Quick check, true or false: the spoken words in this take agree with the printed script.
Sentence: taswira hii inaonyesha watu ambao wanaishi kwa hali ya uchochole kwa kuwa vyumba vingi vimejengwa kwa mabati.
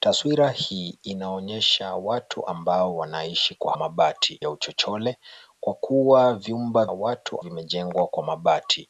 false